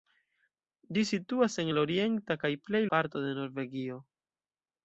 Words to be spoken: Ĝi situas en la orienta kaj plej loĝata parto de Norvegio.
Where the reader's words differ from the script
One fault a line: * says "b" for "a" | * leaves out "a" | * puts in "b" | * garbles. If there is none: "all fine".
* leaves out "loĝata"